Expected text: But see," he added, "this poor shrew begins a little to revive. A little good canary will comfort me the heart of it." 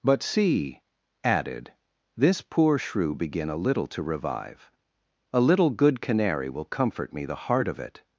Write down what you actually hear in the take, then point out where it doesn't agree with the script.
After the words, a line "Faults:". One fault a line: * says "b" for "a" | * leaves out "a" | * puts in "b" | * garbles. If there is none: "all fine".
But see," added, "this poor shrew begin a little to revive. A little good canary will comfort me the heart of it."
Faults:
* leaves out "he"
* says "begin" for "begins"